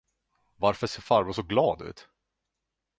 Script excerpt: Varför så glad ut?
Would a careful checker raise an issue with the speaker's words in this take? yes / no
yes